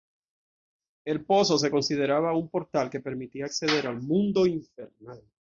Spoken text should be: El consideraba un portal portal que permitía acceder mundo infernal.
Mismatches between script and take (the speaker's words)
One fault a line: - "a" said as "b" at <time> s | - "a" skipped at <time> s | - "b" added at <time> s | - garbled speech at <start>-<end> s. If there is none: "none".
- "pozo se" added at 1.2 s
- "portal" skipped at 2.9 s
- "al" added at 3.9 s